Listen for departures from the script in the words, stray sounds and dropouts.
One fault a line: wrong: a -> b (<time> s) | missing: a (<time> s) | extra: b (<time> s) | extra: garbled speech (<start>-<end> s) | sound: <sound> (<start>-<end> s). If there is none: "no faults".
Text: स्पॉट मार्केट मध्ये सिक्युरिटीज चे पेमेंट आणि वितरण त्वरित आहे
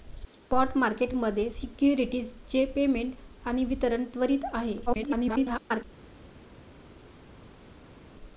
extra: garbled speech (4.9-5.8 s)